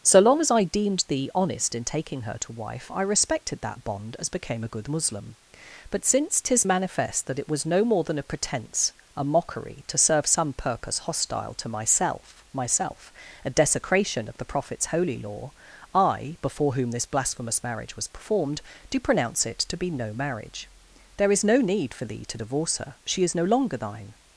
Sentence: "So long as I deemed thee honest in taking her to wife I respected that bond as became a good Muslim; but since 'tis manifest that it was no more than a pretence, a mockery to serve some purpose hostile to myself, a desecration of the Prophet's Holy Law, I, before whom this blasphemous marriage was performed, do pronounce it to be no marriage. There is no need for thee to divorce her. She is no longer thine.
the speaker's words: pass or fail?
fail